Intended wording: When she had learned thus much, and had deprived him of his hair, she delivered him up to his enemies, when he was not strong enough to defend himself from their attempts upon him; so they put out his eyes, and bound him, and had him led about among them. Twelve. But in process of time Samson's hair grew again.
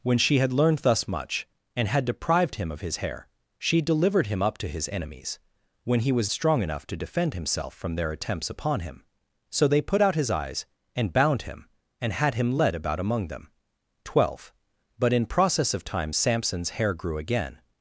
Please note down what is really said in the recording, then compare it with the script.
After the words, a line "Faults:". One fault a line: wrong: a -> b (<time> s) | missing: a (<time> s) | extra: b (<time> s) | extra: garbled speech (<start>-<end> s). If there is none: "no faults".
When she had learned thus much, and had deprived him of his hair, she delivered him up to his enemies, when he was strong enough to defend himself from their attempts upon him; so they put out his eyes, and bound him, and had him led about among them. Twelve. But in process of time Samson's hair grew again.
Faults:
missing: not (6.3 s)